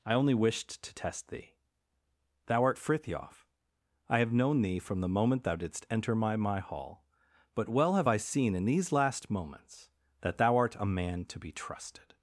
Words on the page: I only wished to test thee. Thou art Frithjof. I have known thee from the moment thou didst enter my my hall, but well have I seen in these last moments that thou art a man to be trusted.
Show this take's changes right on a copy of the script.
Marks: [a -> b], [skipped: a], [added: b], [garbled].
I only wished to test thee. Thou art Frithjof. I have known thee from the moment thou didst enter my my hall, but well have I seen in these last moments that thou art a man to be trusted.